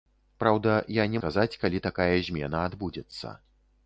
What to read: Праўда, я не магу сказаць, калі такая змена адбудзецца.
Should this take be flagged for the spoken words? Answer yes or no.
yes